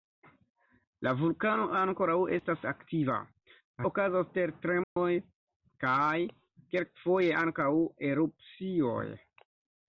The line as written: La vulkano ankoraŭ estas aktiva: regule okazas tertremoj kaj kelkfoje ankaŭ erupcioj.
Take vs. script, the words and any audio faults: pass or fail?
fail